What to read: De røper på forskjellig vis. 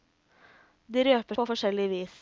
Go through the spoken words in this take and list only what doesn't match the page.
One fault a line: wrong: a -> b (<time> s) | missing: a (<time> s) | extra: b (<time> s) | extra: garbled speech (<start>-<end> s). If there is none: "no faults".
no faults